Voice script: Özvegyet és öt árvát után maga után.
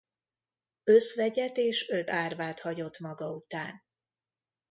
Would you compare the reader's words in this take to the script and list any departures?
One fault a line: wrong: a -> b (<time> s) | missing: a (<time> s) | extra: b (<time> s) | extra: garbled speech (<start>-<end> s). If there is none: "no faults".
wrong: után -> hagyott (2.6 s)